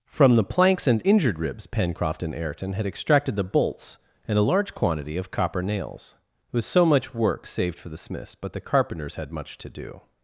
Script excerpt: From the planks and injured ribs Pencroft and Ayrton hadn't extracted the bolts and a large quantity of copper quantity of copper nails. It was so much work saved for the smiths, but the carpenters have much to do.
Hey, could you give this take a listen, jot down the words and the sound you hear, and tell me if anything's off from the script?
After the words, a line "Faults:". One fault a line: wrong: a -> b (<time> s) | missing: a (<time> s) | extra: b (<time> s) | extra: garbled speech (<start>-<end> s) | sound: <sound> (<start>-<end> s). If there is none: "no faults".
From the planks and injured ribs Pencroft and Ayrton had extracted the bolts and a large quantity of copper nails. It was so much work saved for the smiths, but the carpenters had much to do.
Faults:
wrong: hadn't -> had (2.7 s)
missing: quantity of copper (5.6 s)
wrong: have -> had (9.2 s)